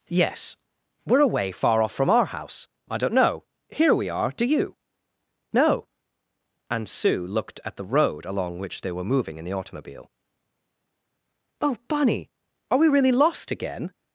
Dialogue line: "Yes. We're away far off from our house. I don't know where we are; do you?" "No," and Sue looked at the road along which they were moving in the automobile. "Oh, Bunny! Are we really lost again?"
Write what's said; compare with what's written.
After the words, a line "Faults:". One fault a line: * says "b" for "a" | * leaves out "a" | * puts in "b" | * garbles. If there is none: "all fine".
"Yes. We're away far off from our house. I don't know here we are; do you?" "No," and Sue looked at the road along which they were moving in the automobile. "Oh, Bunny! Are we really lost again?"
Faults:
* says "here" for "where"